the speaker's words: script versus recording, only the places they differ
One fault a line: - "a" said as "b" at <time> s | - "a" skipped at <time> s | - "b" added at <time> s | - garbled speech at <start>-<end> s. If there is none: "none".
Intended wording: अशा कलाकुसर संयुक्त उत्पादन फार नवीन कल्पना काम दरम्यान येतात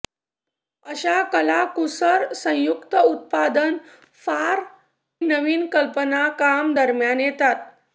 none